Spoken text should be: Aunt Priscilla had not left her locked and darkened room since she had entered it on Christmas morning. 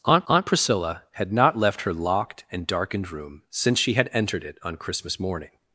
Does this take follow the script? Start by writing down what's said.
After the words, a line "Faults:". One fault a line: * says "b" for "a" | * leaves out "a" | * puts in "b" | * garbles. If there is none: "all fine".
Aunt aunt Priscilla had not left her locked and darkened room since she had entered it on Christmas morning.
Faults:
* puts in "aunt"